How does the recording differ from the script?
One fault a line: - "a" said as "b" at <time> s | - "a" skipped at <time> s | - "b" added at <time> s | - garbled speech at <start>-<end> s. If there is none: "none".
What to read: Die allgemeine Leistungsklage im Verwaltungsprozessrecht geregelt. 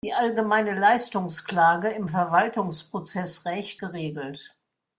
none